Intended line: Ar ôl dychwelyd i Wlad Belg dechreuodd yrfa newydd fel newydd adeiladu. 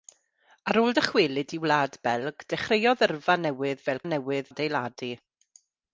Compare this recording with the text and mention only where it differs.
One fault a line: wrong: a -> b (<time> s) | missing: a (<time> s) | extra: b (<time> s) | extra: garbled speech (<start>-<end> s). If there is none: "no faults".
no faults